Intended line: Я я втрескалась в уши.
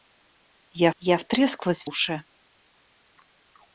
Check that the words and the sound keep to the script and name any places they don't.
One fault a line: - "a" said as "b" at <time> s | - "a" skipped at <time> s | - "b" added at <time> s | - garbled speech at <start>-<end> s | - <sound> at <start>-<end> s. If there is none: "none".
none